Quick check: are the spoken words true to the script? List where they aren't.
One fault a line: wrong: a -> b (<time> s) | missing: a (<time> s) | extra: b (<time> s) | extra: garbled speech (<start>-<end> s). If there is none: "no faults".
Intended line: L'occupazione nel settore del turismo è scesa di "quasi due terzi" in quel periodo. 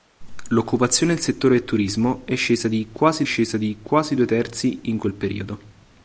extra: scesa di quasi (3.2 s)